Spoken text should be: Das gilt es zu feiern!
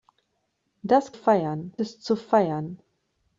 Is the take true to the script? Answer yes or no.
no